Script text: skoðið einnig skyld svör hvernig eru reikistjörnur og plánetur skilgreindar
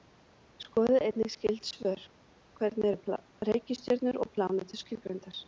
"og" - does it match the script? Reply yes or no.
yes